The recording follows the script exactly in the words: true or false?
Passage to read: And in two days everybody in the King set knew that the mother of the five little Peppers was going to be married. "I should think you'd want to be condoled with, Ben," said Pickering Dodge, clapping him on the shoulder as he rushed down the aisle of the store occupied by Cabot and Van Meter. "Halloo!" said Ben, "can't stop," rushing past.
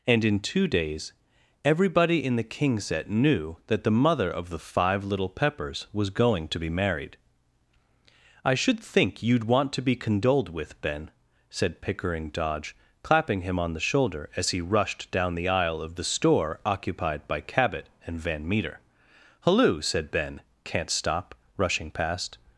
true